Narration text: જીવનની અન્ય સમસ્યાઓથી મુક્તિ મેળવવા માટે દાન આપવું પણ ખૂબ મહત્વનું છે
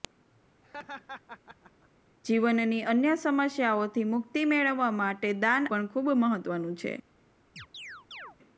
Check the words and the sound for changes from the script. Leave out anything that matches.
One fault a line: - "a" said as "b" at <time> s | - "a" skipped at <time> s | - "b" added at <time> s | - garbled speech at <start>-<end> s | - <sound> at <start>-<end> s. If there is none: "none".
- laugh at 0.6-1.9 s
- "આપવું" skipped at 5.7 s
- chirp at 7.6-8.4 s